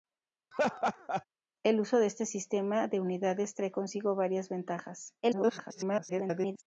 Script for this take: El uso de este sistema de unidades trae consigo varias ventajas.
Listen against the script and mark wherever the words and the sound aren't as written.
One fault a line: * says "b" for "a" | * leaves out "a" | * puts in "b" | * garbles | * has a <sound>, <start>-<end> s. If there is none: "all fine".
* has a laugh, 0.5-1.2 s
* garbles